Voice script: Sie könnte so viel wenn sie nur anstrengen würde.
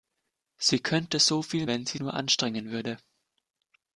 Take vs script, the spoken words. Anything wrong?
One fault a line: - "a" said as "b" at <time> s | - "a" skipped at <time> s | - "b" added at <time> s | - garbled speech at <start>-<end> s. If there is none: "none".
none